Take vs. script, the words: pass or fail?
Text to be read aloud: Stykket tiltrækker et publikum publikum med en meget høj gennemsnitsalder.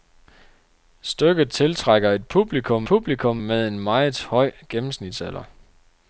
pass